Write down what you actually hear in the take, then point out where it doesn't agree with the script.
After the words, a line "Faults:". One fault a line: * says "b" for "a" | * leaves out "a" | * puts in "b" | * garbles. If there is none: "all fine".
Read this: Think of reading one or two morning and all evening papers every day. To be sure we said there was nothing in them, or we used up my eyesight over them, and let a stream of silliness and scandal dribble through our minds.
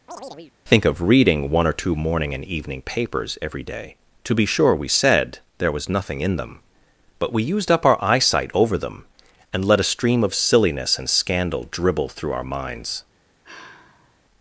Think of reading one or two morning and evening papers every day. To be sure we said there was nothing in them, but we used up our eyesight over them, and let a stream of silliness and scandal dribble through our minds.
Faults:
* leaves out "all"
* says "but" for "or"
* says "our" for "my"